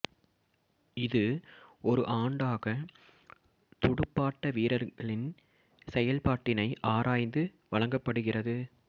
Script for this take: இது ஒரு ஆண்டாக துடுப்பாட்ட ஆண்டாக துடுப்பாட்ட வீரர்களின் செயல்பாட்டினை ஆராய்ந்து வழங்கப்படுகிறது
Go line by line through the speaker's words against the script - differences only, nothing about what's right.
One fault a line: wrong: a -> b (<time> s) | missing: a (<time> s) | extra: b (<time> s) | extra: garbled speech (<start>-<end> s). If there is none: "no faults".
missing: ஆண்டாக துடுப்பாட்ட (4.5 s)